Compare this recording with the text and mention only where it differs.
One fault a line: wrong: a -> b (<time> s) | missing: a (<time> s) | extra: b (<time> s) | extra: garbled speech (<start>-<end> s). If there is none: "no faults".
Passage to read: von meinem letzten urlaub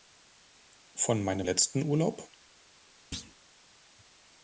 no faults